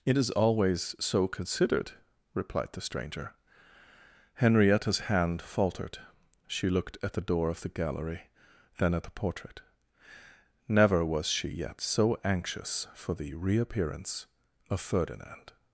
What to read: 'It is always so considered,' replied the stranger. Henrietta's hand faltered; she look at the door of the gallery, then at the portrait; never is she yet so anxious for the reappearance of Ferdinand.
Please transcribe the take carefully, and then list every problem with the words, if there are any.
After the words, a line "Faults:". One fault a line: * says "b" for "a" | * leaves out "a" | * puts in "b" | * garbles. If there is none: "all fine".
'It is always so considered,' replied the stranger. Henrietta's hand faltered; she looked at the door of the gallery, then at the portrait; never was she yet so anxious for the reappearance of Ferdinand.
Faults:
* says "looked" for "look"
* says "was" for "is"